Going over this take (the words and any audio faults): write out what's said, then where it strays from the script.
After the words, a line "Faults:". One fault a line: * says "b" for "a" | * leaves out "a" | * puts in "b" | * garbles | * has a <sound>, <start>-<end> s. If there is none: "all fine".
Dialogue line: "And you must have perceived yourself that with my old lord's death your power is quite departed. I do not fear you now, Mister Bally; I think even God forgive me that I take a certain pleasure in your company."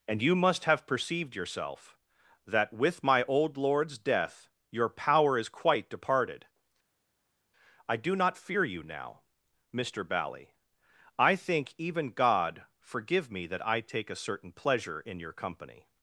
"And you must have perceived yourself that with my old lord's death your power is quite departed. I do not fear you now, Mister Bally; I think even God forgive me that I take a certain pleasure in your company."
Faults:
all fine